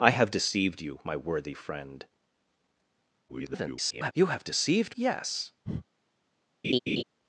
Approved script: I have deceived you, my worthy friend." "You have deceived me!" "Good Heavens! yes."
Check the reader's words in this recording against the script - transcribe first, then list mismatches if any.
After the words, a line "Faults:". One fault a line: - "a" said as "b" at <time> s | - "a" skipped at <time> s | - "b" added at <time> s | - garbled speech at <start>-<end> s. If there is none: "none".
I have deceived you, my worthy friend." [garbled] "You have deceived! yes."
Faults:
- garbled speech at 3.3-4.1 s
- "me Good Heavens" skipped at 4.9 s